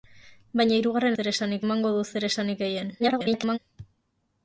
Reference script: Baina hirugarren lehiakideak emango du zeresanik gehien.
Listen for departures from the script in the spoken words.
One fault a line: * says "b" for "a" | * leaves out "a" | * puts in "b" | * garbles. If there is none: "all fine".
* says "zeresanik" for "lehiakideak"
* garbles